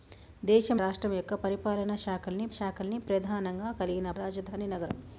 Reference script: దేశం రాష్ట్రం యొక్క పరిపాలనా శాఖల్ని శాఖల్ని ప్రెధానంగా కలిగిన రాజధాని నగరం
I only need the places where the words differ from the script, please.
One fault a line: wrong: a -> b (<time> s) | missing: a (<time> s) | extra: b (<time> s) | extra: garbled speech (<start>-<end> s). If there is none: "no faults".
no faults